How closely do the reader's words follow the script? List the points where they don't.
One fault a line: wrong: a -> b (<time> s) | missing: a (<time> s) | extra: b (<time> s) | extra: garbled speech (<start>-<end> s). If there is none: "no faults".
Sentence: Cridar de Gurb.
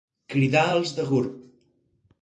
extra: els (0.7 s)